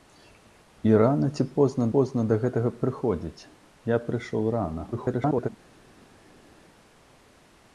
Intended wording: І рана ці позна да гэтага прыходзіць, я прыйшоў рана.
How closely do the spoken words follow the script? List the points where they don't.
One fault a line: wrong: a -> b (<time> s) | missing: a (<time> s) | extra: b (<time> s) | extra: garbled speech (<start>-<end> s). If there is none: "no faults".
extra: позна (1.9 s)
extra: garbled speech (4.9-5.5 s)